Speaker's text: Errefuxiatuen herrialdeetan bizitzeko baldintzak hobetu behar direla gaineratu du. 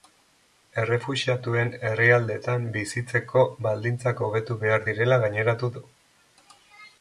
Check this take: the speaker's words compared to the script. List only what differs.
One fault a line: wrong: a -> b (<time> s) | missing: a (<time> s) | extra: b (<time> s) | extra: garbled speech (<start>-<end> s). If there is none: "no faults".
no faults